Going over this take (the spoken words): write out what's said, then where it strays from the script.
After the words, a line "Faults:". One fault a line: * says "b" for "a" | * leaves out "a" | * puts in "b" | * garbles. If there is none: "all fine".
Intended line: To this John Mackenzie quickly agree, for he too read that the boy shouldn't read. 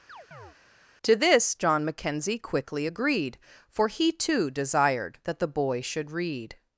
To this John Mackenzie quickly agreed, for he too desired that the boy should read.
Faults:
* says "agreed" for "agree"
* says "desired" for "read"
* says "should" for "shouldn't"